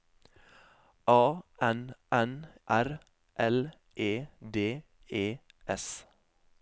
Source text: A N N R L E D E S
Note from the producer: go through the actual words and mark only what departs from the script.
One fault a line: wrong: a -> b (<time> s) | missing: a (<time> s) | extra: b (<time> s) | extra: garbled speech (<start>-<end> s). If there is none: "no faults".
no faults